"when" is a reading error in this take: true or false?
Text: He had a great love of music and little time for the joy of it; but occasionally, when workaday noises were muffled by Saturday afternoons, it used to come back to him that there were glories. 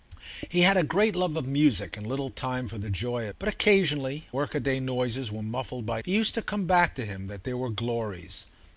true